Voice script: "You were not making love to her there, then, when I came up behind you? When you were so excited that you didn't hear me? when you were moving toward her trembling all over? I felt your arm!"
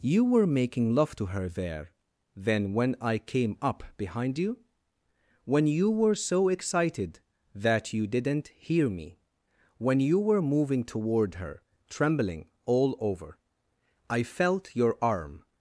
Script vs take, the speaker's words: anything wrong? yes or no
yes